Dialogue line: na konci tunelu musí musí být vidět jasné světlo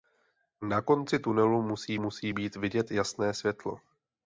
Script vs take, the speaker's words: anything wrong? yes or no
no